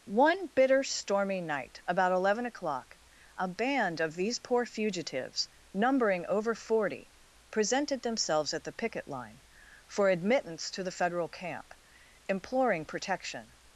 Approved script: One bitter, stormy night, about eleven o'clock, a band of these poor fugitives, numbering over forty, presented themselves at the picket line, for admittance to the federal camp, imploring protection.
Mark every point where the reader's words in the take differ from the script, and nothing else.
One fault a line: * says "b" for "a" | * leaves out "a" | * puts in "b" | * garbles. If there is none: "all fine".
all fine